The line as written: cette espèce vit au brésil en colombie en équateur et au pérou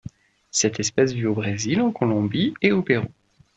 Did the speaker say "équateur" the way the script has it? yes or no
no